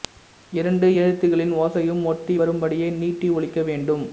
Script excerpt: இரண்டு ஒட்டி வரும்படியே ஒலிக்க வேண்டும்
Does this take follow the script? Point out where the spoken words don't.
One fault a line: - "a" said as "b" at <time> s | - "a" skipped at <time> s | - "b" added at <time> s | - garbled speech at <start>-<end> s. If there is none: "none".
- "எழுத்துகளின் ஓசையும்" added at 1.0 s
- "நீட்டி" added at 3.0 s